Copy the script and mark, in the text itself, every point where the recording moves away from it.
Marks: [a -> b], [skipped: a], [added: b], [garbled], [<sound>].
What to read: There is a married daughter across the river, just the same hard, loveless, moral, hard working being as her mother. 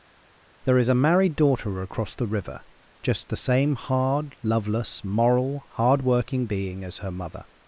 There is a married daughter across the river, just the same hard, loveless, moral, hard working being as her mother.